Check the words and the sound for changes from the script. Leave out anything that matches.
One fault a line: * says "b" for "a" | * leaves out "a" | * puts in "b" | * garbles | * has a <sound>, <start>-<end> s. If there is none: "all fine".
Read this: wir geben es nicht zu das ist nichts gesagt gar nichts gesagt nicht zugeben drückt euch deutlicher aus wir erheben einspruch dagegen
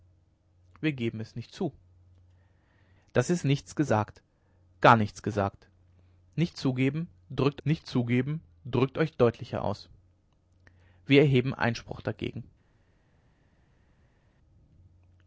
* puts in "nicht zugeben drückt"